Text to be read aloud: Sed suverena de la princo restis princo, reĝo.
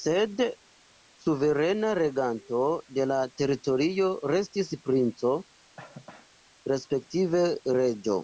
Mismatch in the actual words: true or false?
true